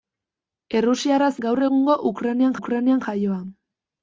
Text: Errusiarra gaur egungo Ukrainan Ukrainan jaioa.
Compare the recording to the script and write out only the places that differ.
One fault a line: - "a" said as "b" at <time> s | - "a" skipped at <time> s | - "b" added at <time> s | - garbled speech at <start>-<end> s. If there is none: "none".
none